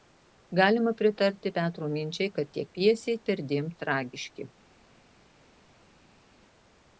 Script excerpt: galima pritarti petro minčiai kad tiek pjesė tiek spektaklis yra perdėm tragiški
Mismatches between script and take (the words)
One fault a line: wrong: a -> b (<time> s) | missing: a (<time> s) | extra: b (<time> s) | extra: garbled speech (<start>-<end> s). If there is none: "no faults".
missing: tiek spektaklis yra (3.2 s)